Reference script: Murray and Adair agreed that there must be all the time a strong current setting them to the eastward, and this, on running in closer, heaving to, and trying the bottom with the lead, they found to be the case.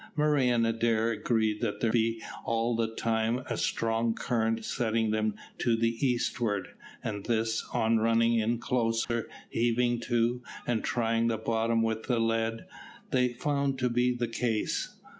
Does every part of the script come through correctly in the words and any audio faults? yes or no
no